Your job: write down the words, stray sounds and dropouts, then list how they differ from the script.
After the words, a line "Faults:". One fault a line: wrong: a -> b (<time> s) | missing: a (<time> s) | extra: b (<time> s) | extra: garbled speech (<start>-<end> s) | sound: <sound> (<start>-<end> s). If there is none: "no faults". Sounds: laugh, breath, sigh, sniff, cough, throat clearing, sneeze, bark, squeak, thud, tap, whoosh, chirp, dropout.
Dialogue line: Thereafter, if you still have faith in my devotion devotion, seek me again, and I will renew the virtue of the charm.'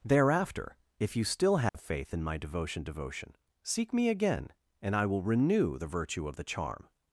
Thereafter, if you still have faith in my devotion devotion, seek me again, and I will renew the virtue of the charm.'
Faults:
sound: dropout (1.7-1.7 s)